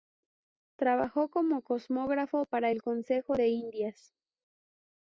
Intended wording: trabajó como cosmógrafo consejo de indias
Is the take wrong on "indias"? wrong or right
right